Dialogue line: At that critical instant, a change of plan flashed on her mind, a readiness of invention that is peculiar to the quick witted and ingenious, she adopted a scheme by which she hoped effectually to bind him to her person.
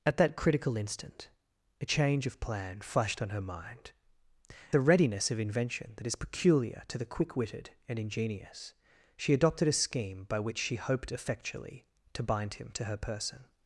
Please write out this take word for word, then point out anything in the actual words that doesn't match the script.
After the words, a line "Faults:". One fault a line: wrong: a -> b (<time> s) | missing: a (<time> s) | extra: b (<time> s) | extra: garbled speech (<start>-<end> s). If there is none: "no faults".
At that critical instant, a change of plan flashed on her mind, a readiness of invention that is peculiar to the quick witted and ingenious, she adopted a scheme by which she hoped effectually to bind him to her person.
Faults:
no faults